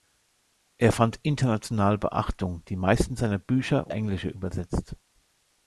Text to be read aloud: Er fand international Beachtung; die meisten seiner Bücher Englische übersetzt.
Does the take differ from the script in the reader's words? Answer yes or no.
no